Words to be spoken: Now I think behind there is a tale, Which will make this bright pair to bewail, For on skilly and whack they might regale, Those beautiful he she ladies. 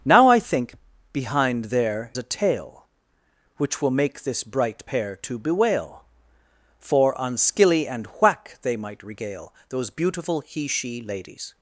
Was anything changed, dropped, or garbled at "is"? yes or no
yes